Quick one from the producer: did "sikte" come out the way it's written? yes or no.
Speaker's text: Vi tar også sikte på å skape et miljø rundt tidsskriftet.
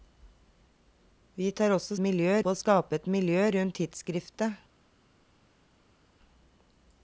no